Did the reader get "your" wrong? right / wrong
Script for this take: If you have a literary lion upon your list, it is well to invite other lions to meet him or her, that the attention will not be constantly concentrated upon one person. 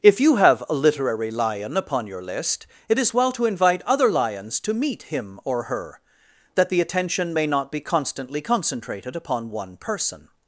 right